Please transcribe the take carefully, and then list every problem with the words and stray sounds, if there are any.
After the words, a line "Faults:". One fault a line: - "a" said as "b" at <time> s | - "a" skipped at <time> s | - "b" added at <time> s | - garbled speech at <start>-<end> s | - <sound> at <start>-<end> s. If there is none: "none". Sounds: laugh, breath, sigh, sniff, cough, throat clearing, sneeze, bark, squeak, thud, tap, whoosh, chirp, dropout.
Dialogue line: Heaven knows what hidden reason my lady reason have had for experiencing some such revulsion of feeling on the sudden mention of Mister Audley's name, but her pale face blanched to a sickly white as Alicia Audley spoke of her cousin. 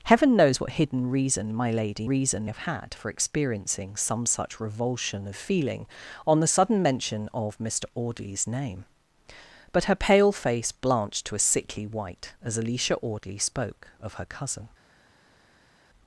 Heaven knows what hidden reason my lady reason have had for experiencing some such revulsion of feeling on the sudden mention of Mister Audley's name, but her pale face blanched to a sickly white as Alicia Audley spoke of her cousin.
Faults:
none